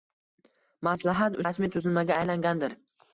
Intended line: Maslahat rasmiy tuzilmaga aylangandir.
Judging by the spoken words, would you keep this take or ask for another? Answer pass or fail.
pass